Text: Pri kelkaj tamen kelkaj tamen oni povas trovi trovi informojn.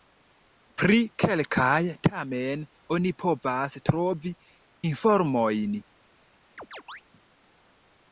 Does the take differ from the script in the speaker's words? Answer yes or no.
yes